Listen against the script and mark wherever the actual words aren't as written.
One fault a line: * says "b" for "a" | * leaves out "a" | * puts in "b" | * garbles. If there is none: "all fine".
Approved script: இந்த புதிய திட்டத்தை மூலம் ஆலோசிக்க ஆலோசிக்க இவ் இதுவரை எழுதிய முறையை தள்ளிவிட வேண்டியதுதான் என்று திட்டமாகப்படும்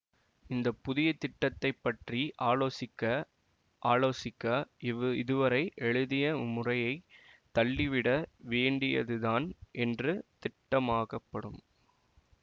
* says "பற்றி" for "மூலம்"